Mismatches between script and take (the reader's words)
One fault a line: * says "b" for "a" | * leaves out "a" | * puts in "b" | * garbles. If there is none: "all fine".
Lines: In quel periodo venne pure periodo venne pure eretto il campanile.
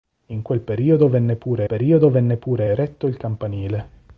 all fine